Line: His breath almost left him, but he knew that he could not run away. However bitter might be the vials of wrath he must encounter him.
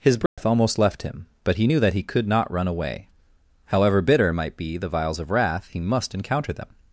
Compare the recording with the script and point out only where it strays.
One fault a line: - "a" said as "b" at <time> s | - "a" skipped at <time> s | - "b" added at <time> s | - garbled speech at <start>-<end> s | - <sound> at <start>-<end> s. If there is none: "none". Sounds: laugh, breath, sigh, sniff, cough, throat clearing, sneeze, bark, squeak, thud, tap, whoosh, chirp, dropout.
- dropout at 0.3-0.4 s
- "him" said as "them" at 6.5 s